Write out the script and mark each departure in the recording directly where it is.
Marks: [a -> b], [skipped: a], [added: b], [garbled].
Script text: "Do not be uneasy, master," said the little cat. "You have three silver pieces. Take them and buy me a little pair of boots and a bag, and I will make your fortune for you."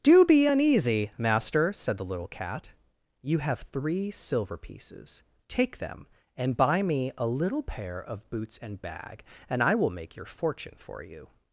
"Do [skipped: not] be uneasy, master," said the little cat. "You have three silver pieces. Take them and buy me a little pair of boots and [skipped: a] bag, and I will make your fortune for you."